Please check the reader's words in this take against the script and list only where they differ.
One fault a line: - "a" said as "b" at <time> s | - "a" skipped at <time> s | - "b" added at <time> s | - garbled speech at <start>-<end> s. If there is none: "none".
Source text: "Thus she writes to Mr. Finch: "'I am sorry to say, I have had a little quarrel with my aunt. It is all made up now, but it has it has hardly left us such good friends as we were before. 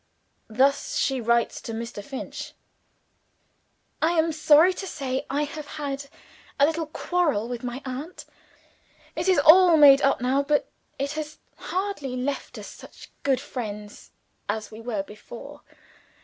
- "it has" skipped at 11.4 s